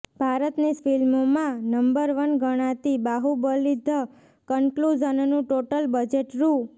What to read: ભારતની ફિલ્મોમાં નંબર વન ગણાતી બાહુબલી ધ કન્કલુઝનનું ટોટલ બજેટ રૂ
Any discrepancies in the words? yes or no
no